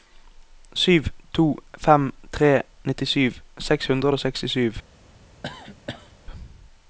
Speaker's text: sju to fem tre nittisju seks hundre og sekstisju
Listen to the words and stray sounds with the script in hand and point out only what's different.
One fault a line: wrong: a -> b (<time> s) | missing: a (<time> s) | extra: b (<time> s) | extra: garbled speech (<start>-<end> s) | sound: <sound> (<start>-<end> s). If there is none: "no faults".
sound: cough (5.4-6.1 s)